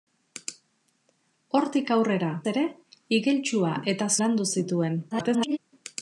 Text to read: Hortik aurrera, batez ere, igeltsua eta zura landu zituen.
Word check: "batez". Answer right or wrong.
wrong